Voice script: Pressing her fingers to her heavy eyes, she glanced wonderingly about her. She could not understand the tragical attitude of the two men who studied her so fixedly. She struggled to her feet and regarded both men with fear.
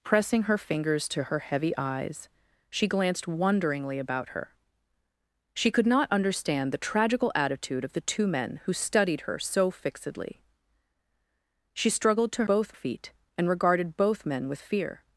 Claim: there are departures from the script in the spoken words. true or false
true